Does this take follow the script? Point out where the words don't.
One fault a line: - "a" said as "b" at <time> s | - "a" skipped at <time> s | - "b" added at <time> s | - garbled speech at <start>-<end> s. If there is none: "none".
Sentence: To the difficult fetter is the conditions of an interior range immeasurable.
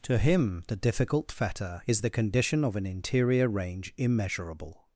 - "him" added at 0.2 s
- "conditions" said as "condition" at 2.1 s